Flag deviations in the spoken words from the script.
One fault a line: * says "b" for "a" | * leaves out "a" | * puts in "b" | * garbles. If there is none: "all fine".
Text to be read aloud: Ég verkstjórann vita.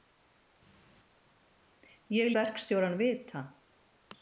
all fine